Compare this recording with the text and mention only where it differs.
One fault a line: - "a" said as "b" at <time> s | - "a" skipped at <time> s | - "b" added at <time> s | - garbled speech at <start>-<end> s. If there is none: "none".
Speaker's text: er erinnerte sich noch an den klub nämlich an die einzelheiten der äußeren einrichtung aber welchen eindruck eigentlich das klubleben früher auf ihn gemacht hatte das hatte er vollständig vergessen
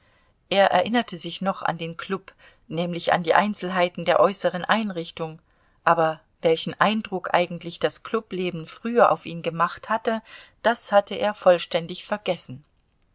none